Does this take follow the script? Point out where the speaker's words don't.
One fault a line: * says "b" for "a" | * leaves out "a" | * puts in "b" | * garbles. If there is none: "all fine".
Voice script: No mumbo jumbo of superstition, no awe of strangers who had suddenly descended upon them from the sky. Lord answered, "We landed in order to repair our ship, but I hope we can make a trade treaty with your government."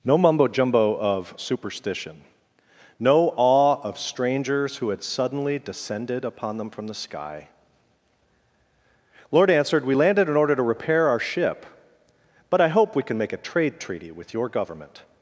all fine